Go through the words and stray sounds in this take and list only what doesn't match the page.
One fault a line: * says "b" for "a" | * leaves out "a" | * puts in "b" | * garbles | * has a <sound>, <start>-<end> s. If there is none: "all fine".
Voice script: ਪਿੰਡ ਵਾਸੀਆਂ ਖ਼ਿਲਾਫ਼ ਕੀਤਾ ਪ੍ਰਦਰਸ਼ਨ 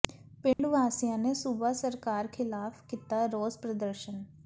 * has a dropout, 0.5-0.6 s
* puts in "ਨੇ ਸੂਬਾ ਸਰਕਾਰ"
* puts in "ਰੋਸ"